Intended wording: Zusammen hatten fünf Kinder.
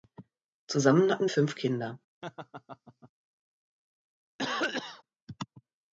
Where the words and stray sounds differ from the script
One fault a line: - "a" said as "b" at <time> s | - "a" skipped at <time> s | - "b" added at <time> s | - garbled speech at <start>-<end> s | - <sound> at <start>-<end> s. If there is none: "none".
- laugh at 2.2-3.1 s
- cough at 4.4-5.0 s